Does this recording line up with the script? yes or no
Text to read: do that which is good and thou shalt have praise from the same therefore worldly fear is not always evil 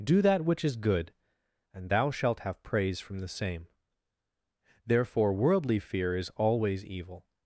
no